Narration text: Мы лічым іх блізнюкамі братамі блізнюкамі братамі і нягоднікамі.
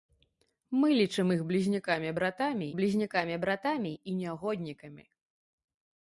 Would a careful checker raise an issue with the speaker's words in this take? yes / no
no